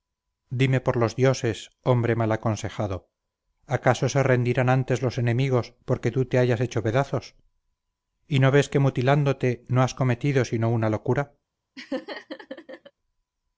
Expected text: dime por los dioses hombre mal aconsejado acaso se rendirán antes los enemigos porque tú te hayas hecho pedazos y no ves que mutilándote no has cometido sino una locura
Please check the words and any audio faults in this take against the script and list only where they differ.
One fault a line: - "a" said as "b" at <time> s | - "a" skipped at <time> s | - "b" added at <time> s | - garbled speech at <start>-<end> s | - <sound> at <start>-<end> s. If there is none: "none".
- laugh at 11.8-12.9 s